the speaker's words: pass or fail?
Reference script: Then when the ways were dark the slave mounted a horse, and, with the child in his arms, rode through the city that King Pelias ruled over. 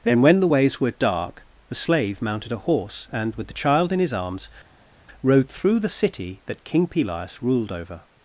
pass